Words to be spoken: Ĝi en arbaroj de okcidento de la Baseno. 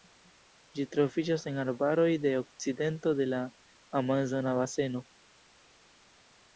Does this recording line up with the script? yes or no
no